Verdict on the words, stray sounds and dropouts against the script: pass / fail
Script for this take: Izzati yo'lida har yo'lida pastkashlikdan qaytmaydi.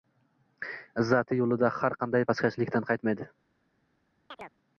fail